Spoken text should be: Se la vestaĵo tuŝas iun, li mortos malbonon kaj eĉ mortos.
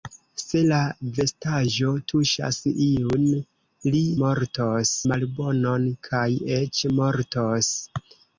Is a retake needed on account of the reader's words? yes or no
no